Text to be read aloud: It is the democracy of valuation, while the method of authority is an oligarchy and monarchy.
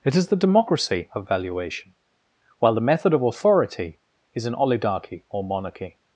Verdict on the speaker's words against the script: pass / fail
fail